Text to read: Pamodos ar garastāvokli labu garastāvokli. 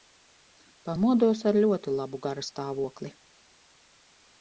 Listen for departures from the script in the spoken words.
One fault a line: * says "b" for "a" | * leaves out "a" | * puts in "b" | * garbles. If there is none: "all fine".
* says "ļoti" for "garastāvokli"